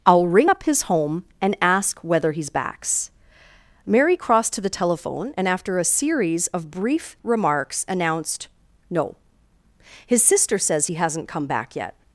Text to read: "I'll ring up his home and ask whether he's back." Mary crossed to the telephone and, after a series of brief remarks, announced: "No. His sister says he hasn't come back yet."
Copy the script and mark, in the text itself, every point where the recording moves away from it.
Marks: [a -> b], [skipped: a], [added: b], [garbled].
"I'll ring up his home and ask whether he's [back." -> backs] Mary crossed to the telephone and, after a series of brief remarks, announced: "No. His sister says he hasn't come back yet."